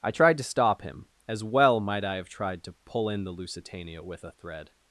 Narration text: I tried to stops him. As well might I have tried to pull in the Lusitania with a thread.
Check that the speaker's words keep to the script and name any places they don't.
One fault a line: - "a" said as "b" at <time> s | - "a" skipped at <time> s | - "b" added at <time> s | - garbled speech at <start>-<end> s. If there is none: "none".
- "stops" said as "stop" at 0.4 s